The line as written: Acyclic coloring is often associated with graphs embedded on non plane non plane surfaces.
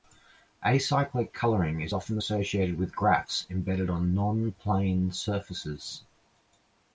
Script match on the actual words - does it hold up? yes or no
no